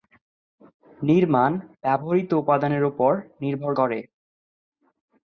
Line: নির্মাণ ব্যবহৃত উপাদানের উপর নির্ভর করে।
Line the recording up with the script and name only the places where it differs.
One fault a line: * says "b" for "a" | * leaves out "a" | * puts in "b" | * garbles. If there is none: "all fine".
all fine